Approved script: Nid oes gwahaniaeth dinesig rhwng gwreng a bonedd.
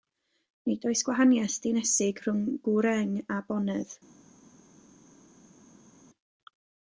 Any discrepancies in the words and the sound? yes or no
no